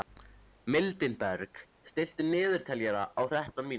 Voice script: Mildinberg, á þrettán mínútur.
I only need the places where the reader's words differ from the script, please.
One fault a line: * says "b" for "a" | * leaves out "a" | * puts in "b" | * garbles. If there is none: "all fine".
* puts in "stilltu niðurteljara"